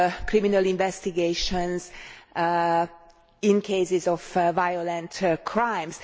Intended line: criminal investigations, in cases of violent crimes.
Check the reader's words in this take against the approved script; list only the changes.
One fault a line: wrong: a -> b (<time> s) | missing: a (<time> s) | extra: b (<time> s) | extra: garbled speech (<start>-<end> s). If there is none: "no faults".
no faults